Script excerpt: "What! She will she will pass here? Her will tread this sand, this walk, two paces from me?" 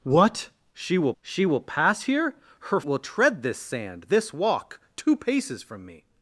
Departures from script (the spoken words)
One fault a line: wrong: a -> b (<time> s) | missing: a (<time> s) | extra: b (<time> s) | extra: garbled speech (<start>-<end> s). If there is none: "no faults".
no faults